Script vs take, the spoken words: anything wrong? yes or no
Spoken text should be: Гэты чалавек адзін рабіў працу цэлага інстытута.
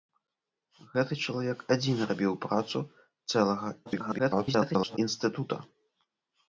yes